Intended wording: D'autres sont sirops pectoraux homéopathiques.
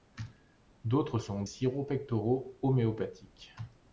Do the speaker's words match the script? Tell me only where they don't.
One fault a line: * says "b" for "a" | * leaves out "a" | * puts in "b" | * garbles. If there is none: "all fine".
all fine